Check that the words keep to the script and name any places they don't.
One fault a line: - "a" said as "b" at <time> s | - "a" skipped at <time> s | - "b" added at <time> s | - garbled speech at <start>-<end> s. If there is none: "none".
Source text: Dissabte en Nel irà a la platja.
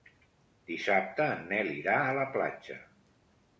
none